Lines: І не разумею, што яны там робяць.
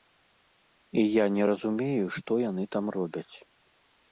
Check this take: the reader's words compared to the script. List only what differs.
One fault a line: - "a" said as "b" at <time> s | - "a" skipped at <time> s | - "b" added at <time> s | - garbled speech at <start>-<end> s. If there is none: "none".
- "я" added at 1.0 s